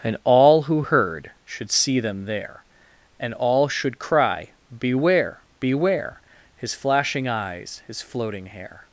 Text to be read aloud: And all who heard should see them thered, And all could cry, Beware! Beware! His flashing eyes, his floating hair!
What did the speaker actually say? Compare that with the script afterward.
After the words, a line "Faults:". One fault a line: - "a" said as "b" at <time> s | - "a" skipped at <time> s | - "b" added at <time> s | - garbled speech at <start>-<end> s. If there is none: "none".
And all who heard should see them there, And all should cry, Beware! Beware! His flashing eyes, his floating hair!
Faults:
- "thered" said as "there" at 2.2 s
- "could" said as "should" at 3.7 s